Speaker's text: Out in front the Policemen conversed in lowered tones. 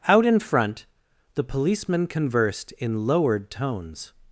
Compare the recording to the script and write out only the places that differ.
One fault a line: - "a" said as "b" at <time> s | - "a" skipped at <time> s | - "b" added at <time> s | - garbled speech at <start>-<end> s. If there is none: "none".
none